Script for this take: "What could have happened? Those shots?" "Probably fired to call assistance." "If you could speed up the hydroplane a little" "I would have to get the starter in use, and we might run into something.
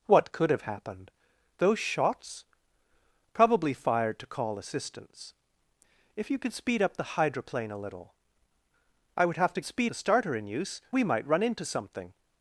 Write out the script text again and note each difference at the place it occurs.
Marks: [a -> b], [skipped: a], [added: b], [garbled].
"What could have happened? Those shots?" "Probably fired to call assistance." "If you could speed up the hydroplane a little" "I would have to [get -> speed] the starter in use, [skipped: and] we might run into something.